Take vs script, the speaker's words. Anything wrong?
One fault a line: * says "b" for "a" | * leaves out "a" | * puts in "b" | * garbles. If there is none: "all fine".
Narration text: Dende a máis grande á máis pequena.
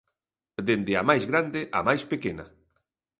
all fine